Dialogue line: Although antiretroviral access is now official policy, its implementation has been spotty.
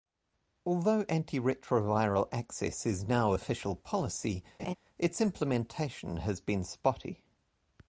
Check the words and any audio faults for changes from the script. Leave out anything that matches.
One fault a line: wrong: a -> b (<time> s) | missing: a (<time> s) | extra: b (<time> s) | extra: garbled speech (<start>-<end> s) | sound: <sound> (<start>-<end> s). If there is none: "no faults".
sound: laugh (4.6-4.7 s)